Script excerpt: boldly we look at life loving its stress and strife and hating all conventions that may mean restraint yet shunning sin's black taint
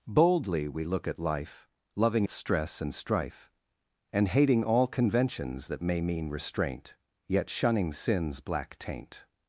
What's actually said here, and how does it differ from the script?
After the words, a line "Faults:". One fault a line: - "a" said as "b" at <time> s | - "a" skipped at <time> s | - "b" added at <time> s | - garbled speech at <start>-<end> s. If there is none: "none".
boldly we look at life loving its stress and strife and hating all conventions that may mean restraint yet shunning sin's black taint
Faults:
none